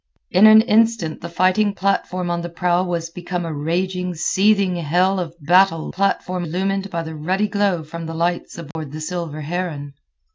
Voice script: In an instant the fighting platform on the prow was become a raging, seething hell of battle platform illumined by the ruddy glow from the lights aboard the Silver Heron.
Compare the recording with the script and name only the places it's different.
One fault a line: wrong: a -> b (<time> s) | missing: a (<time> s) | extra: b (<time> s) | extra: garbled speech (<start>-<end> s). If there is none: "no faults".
no faults